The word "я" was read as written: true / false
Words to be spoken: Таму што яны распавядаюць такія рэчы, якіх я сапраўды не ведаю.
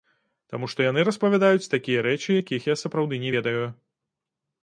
true